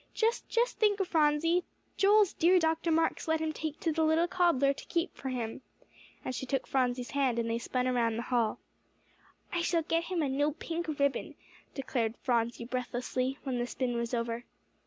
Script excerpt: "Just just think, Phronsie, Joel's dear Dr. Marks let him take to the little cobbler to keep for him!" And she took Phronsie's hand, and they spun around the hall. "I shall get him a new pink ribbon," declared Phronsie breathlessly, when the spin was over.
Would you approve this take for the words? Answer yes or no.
yes